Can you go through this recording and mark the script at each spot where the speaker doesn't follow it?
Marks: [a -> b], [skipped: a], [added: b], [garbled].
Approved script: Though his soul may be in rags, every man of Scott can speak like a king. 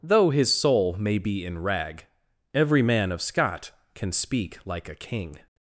Though his soul may be in [rags, -> rag] every man of Scott can speak like a king.